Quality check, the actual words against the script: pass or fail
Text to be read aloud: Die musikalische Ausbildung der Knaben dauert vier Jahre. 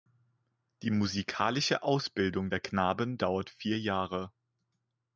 pass